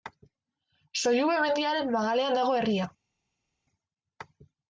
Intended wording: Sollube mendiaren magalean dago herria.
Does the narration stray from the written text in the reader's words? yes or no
no